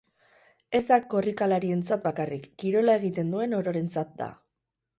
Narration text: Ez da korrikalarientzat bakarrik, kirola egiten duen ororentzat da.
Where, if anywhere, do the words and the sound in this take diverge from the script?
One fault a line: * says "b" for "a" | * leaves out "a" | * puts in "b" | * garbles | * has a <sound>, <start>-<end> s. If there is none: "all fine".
all fine